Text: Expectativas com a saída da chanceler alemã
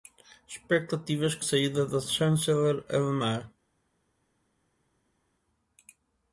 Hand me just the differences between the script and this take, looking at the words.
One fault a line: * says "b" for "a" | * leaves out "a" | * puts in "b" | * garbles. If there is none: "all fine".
* leaves out "a"